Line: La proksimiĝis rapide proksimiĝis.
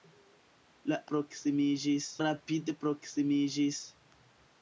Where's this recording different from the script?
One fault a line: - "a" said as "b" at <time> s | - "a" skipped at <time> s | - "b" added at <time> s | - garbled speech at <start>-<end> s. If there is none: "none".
none